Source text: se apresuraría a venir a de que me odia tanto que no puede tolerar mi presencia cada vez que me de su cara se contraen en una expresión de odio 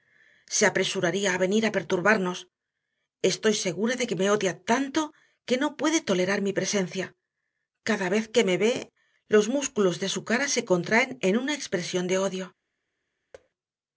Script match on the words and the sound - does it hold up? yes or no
no